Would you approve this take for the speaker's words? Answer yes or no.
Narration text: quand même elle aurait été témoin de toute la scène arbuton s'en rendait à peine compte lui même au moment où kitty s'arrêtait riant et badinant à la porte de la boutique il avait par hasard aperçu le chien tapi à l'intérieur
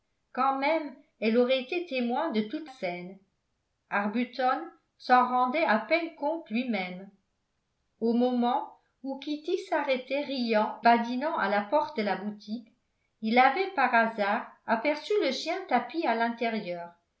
no